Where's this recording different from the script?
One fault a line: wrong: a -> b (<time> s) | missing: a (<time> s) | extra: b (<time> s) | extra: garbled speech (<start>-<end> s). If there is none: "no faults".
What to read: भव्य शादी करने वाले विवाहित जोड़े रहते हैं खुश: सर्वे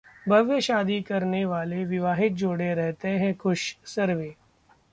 no faults